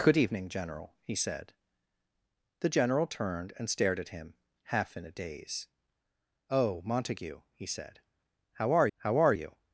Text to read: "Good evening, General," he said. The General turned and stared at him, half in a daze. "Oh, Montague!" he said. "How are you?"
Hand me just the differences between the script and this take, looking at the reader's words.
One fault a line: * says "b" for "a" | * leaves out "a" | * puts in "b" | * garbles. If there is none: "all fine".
* puts in "how are"